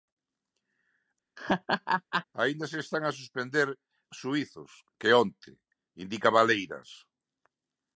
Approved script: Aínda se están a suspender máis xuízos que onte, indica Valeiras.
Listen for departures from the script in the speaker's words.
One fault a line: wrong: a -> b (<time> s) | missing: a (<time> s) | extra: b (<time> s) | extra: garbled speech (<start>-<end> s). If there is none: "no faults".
missing: máis (3.7 s)